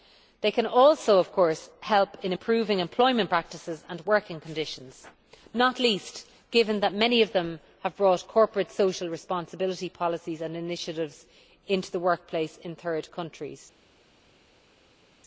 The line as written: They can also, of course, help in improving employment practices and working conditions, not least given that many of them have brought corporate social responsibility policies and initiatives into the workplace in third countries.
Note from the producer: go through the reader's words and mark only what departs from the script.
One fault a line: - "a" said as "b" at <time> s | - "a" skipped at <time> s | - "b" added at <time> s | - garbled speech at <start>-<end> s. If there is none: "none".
none